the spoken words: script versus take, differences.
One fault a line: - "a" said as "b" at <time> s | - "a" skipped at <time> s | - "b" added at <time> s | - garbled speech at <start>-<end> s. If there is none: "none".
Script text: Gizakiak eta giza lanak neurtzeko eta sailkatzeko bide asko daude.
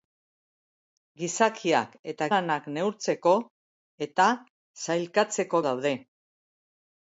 - "giza" skipped at 2.3 s
- "bide asko" skipped at 5.6 s